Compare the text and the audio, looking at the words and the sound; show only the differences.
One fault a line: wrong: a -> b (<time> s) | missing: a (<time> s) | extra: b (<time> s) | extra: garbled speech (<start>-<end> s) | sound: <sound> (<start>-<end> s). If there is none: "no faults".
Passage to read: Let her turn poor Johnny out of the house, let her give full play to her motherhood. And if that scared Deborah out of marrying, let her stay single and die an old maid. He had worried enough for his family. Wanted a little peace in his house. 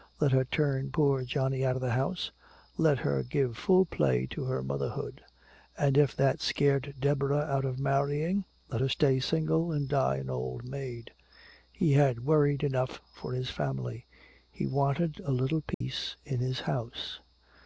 extra: He (14.5 s)
sound: dropout (15.7-15.8 s)